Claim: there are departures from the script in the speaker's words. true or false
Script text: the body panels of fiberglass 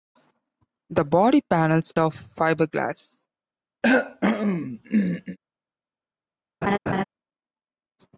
false